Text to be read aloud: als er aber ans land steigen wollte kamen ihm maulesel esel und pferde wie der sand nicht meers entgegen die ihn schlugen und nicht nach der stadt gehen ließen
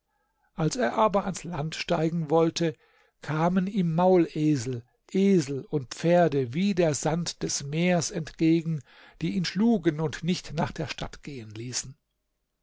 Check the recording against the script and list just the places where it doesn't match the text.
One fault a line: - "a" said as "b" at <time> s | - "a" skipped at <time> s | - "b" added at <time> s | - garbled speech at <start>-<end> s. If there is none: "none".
- "nicht" said as "des" at 7.4 s